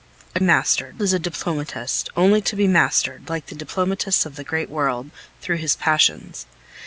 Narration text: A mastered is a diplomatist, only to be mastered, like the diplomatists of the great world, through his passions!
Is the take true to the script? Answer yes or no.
yes